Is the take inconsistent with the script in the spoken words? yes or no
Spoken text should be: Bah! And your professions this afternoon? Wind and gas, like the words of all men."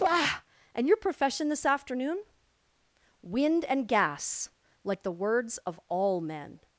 yes